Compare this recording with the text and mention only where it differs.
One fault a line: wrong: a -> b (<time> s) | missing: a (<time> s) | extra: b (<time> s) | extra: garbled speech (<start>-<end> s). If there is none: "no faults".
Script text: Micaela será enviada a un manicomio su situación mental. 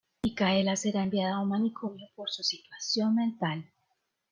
extra: por (2.2 s)